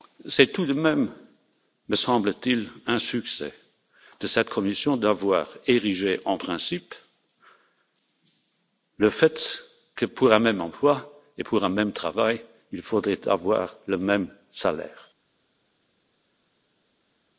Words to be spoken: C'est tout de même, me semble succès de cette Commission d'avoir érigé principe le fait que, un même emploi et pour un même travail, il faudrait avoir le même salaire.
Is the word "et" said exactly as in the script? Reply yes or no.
yes